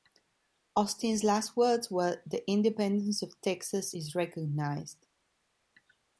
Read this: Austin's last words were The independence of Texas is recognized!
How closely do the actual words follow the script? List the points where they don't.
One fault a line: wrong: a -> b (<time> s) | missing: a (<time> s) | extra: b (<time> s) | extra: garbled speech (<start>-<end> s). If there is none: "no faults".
no faults